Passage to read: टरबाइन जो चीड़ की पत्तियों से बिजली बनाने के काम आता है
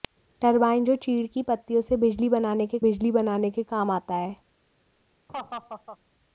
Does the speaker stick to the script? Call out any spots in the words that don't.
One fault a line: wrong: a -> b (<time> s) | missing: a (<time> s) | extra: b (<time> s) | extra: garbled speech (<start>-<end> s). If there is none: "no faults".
extra: बिजली बनाने के (2.8 s)